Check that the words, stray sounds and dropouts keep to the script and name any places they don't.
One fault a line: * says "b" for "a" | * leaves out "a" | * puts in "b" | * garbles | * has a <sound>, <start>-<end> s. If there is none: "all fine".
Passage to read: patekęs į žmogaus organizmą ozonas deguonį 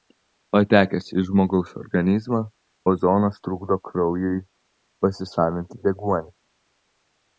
* puts in "trukdo kraujui pasisavinti"